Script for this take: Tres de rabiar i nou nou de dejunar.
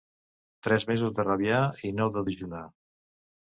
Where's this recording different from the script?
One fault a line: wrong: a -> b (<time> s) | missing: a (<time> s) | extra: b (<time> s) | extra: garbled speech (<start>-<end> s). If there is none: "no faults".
extra: mesos (0.9 s)
missing: nou (2.1 s)